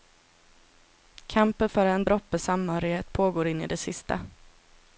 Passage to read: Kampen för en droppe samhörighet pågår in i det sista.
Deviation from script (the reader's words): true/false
false